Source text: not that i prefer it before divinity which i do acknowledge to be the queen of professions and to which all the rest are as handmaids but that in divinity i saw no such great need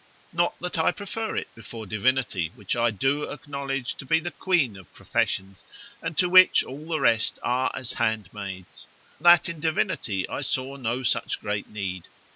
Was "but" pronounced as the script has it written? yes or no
no